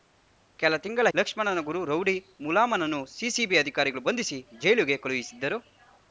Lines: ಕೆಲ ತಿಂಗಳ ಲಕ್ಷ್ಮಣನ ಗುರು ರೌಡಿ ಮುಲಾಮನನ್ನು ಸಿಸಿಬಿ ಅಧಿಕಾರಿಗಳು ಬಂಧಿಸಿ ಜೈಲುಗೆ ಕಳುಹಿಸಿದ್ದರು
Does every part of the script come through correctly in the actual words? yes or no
yes